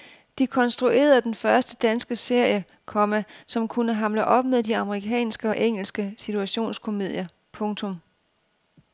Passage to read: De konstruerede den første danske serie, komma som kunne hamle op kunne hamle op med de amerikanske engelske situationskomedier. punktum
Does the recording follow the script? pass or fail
fail